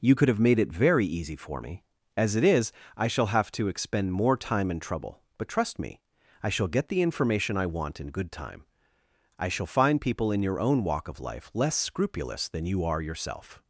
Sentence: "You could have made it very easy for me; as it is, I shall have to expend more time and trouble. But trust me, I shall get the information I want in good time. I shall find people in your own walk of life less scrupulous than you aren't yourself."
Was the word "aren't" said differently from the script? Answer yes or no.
yes